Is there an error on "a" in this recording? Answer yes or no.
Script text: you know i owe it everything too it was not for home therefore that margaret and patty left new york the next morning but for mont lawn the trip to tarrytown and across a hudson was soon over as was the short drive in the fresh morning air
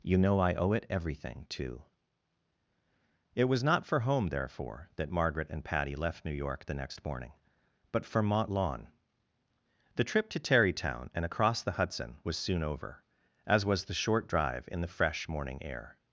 yes